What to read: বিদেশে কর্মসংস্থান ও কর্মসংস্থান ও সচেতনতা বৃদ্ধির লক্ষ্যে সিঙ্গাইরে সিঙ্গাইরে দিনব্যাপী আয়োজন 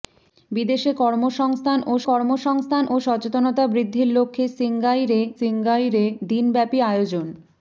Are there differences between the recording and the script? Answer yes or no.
no